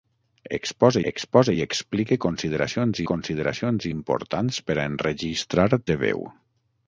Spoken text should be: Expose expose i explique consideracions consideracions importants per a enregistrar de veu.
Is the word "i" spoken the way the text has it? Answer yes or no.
yes